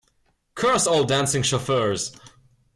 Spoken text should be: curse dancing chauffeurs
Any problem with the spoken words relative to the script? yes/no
yes